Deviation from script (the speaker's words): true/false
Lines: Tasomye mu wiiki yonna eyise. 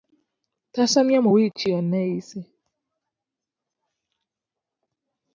false